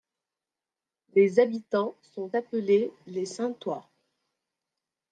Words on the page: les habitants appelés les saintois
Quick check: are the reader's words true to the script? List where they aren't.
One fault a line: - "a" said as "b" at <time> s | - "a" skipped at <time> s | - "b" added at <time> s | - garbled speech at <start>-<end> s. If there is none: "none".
- "sont" added at 2.0 s